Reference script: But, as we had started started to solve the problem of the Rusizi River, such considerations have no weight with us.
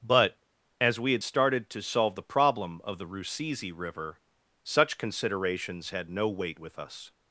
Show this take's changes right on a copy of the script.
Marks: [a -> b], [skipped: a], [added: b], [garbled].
But, as we had started [skipped: started] to solve the problem of the Rusizi River, such considerations [have -> had] no weight with us.